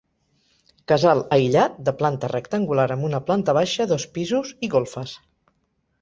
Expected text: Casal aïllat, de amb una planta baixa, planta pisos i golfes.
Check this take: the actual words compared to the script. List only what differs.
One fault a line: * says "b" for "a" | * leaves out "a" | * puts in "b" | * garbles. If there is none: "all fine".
* puts in "planta rectangular"
* says "dos" for "planta"